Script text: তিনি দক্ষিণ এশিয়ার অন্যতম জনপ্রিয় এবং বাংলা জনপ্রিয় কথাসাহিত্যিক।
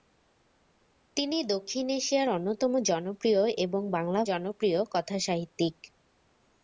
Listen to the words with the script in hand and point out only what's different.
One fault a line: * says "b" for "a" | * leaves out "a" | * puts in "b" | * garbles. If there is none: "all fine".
all fine